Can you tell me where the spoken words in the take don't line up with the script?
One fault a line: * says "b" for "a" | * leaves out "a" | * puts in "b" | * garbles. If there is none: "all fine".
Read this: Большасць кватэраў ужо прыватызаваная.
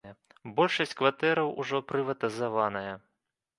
all fine